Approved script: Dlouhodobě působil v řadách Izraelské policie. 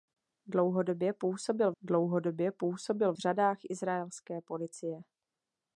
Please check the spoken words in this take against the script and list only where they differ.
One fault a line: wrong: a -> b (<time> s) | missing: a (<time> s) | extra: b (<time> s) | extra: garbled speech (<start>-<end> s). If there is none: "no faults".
extra: dlouhodobě působil (1.8 s)